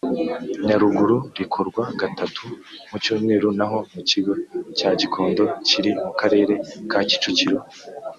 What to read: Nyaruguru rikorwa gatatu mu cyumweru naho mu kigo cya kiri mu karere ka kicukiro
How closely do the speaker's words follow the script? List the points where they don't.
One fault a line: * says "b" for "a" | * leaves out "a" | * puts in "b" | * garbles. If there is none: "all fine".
* puts in "gikondo"